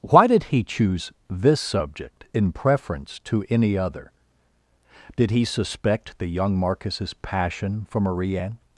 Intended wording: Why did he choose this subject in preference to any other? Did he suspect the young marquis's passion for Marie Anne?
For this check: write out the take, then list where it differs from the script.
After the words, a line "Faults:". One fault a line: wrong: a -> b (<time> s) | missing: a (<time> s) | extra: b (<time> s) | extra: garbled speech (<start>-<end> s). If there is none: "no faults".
Why did he choose this subject in preference to any other? Did he suspect the young marquis's passion for Marie Anne?
Faults:
no faults